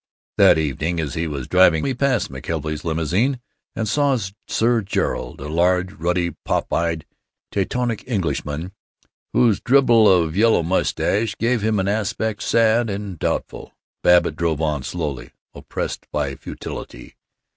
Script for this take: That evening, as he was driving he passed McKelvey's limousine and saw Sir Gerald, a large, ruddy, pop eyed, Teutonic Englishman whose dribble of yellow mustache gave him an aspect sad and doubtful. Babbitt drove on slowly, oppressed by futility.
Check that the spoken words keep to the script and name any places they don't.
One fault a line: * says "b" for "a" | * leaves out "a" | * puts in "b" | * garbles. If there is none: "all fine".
all fine